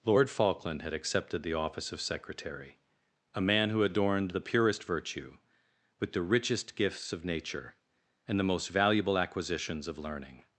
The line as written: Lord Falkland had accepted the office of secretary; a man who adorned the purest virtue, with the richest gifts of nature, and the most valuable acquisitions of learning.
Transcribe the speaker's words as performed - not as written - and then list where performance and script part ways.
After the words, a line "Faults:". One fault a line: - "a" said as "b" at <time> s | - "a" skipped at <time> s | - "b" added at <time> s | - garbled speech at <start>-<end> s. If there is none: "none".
Lord Falkland had accepted the office of secretary; a man who adorned the purest virtue, with the richest gifts of nature, and the most valuable acquisitions of learning.
Faults:
none